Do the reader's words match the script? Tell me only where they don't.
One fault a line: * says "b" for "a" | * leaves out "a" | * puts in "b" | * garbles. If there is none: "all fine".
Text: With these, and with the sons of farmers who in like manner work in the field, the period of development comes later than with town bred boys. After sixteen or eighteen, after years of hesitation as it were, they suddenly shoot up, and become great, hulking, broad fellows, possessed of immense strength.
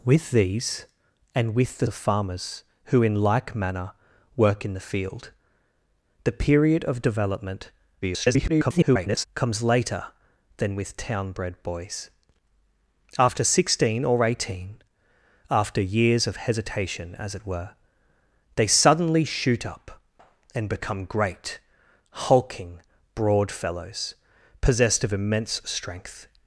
* leaves out "sons"
* garbles